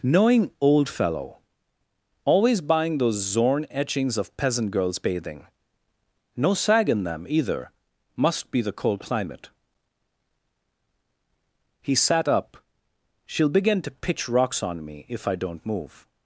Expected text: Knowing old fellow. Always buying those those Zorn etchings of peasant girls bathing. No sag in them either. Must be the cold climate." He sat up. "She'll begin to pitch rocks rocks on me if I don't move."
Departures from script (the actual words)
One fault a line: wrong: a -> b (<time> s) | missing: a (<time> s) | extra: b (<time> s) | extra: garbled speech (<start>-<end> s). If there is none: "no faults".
missing: those (3.1 s)
missing: rocks (14.6 s)